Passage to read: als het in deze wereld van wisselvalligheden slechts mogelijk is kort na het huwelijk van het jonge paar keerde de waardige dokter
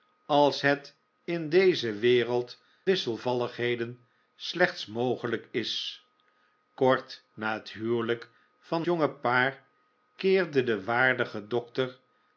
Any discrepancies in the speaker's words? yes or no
yes